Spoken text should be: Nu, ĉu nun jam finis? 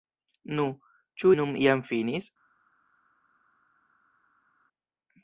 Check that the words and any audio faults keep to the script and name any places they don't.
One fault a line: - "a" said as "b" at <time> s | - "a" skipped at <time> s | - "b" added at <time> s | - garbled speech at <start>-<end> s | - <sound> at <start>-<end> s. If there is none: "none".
none